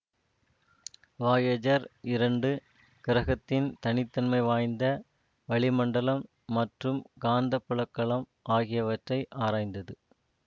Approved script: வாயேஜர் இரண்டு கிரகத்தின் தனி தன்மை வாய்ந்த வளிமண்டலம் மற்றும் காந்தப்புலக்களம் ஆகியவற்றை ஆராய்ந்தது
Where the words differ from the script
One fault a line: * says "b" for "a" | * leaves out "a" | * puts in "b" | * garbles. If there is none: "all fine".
all fine